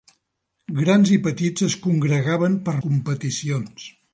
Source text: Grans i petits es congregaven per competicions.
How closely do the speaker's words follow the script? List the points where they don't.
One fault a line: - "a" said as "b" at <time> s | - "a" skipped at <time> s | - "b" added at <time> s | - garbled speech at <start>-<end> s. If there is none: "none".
none